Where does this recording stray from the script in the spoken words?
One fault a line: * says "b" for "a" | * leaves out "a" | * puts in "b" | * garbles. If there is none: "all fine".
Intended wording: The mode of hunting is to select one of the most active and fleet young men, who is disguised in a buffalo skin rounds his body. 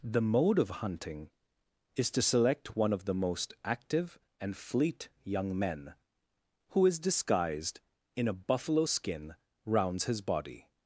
all fine